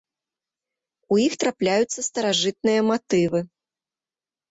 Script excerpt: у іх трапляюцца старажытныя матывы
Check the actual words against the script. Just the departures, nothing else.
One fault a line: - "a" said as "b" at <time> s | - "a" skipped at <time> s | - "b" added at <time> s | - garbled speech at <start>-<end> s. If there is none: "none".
none